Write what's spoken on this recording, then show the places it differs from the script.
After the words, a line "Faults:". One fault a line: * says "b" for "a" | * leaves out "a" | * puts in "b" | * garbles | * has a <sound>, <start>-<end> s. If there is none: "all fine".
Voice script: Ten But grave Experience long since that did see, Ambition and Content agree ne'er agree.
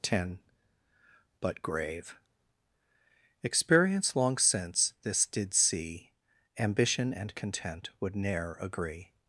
Ten But grave Experience long since this did see, Ambition and Content would ne'er agree.
Faults:
* says "this" for "that"
* says "would" for "agree"